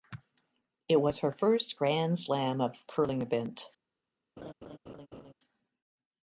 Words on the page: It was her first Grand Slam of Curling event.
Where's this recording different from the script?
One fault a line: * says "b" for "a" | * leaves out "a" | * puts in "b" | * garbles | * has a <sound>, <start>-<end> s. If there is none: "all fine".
* has a laugh, 4.4-5.3 s